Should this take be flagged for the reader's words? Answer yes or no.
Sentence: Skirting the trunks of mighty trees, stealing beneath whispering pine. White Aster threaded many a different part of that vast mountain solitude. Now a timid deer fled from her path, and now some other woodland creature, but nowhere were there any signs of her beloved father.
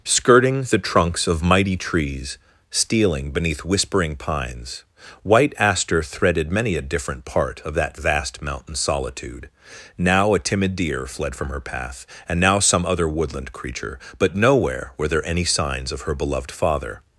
yes